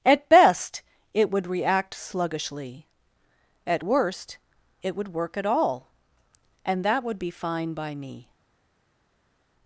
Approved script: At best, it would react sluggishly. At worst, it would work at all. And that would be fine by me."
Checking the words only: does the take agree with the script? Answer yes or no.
yes